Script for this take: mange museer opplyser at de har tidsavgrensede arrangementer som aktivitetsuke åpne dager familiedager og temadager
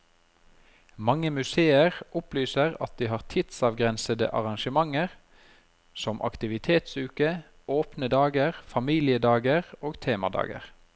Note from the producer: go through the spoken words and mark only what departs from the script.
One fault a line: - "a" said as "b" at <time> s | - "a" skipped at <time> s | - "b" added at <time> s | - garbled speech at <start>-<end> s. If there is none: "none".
none